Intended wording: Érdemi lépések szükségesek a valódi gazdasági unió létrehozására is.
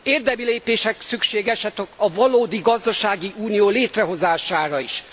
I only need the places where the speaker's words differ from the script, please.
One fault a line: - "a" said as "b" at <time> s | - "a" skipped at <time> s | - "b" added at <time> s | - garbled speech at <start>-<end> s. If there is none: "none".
none